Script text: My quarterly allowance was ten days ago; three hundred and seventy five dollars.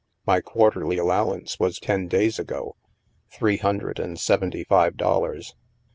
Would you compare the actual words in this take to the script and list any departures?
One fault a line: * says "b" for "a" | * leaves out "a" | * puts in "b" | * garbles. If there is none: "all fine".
all fine